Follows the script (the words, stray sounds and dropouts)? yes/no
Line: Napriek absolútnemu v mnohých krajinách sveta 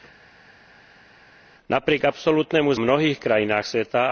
yes